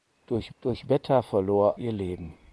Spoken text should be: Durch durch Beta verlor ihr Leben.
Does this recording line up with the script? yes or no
yes